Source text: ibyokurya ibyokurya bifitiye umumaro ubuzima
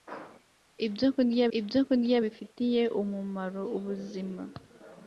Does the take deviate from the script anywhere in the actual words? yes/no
no